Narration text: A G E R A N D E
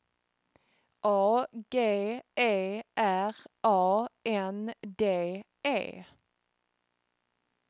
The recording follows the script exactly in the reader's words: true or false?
true